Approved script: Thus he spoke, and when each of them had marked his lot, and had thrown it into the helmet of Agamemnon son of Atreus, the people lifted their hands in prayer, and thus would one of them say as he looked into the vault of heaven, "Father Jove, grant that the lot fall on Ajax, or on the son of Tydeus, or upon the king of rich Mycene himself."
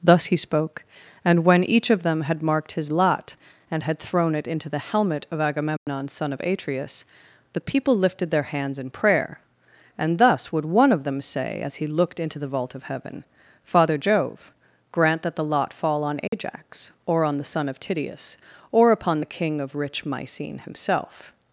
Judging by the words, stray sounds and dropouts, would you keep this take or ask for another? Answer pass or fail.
fail